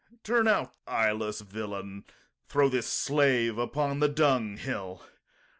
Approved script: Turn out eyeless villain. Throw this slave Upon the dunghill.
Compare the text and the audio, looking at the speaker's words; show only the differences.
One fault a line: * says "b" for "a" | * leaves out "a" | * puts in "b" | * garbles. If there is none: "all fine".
all fine